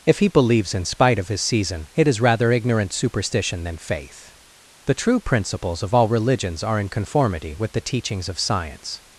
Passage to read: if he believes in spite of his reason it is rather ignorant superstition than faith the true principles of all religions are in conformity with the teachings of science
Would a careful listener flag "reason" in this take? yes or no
yes